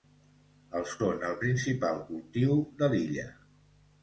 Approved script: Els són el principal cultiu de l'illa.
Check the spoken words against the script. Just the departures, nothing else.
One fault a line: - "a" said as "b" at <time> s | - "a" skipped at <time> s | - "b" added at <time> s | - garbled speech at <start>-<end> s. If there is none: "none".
none